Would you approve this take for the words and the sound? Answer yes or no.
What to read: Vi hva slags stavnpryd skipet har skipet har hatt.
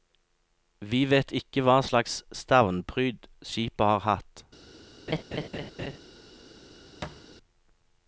no